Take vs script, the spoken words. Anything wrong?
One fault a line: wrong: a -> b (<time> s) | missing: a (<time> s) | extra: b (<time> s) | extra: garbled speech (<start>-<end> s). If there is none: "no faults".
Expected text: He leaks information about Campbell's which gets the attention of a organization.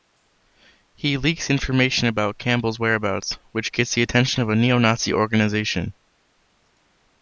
extra: whereabouts (2.8 s)
extra: neo Nazi (4.5 s)